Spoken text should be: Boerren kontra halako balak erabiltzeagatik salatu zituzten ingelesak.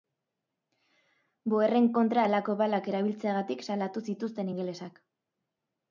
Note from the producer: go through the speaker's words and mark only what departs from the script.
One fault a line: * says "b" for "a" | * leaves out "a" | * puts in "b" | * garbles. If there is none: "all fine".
all fine